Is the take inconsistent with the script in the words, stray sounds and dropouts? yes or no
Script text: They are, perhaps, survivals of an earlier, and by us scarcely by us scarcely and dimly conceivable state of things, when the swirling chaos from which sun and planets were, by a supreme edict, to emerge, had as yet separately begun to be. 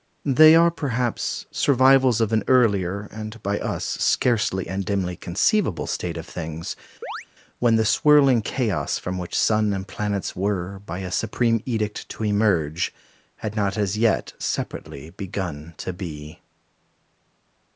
yes